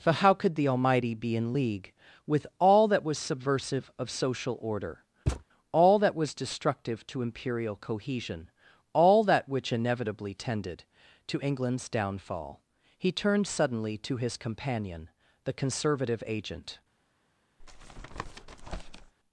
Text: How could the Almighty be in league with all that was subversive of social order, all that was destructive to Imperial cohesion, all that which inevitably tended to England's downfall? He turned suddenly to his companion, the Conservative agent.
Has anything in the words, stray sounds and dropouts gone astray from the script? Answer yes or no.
yes